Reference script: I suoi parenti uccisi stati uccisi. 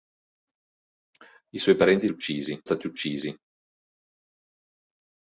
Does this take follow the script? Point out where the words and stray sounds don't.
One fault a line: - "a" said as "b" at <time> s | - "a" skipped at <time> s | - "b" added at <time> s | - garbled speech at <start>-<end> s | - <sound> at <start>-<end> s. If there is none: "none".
none